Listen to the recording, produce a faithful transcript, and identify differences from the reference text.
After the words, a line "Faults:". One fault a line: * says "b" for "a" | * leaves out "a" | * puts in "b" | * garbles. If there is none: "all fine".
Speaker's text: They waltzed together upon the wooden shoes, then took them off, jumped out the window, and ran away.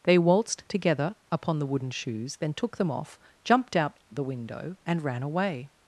They waltzed together upon the wooden shoes, then took them off, jumped out the window, and ran away.
Faults:
all fine